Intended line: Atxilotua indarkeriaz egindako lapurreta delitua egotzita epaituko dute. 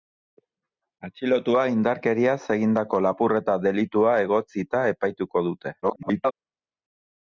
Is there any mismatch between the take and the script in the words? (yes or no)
yes